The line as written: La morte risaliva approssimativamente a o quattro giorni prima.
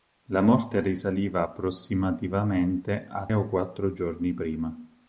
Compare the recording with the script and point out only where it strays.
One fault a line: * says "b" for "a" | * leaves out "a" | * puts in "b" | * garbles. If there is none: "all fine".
all fine